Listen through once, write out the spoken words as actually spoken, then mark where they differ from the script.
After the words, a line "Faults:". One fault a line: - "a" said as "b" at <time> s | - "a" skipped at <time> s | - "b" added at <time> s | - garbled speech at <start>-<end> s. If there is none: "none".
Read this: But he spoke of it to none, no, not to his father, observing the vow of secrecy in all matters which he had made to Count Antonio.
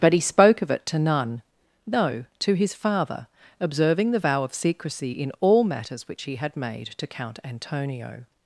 But he spoke of it to none, no, to his father, observing the vow of secrecy in all matters which he had made to Count Antonio.
Faults:
- "not" skipped at 2.2 s